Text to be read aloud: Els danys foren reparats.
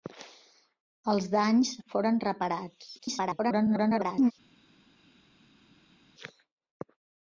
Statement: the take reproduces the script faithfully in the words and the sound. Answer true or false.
false